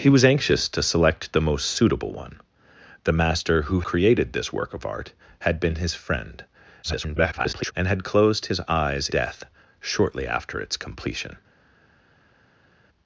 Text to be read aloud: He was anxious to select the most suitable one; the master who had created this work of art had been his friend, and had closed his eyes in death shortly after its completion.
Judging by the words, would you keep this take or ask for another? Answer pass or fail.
fail